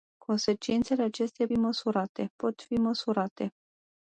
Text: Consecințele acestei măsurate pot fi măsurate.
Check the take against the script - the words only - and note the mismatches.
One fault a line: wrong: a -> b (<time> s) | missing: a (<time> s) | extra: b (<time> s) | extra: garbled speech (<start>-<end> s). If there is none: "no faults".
no faults